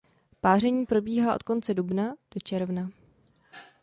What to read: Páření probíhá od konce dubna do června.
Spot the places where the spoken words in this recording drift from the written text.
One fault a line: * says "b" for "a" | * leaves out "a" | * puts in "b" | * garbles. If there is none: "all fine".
all fine